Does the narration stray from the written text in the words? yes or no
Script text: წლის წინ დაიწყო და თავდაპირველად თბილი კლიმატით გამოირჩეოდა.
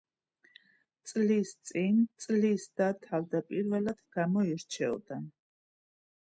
yes